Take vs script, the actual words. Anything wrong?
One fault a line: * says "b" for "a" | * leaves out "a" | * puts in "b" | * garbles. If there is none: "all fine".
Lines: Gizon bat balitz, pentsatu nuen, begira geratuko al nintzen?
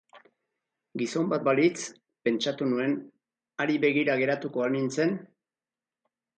* puts in "hari"